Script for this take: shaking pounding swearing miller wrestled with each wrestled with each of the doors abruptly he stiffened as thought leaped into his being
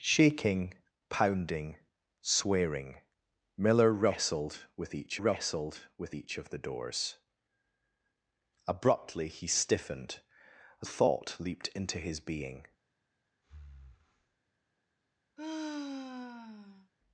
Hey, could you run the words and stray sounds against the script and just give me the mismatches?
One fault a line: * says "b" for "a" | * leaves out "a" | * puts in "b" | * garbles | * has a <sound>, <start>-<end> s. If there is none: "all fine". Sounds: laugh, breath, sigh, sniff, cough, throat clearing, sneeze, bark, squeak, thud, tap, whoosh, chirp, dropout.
* has a breath, 13.4-14.4 s
* has a sigh, 15.4-16.9 s